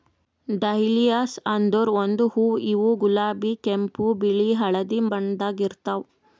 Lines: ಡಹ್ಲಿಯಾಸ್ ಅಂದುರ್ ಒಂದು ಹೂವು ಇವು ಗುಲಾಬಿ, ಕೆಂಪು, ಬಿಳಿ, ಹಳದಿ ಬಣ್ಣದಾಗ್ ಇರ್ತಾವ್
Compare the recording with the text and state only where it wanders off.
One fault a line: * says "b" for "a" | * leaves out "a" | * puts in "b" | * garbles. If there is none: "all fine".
all fine